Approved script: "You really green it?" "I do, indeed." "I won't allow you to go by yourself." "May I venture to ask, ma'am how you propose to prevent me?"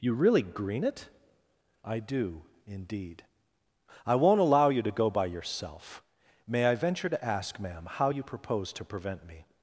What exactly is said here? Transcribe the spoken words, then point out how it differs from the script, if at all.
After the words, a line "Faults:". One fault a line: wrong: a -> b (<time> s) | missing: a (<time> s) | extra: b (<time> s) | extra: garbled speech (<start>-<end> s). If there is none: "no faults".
"You really green it?" "I do, indeed." "I won't allow you to go by yourself." "May I venture to ask, ma'am how you propose to prevent me?"
Faults:
no faults